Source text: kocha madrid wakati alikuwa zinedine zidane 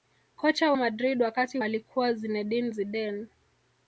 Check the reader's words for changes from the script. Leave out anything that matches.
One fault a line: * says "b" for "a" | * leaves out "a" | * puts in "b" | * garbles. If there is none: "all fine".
all fine